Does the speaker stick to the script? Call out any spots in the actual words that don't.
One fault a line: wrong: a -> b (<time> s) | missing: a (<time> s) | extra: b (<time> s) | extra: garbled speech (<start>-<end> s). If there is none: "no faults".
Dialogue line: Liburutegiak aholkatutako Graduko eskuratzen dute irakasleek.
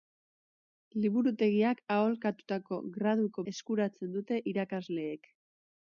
no faults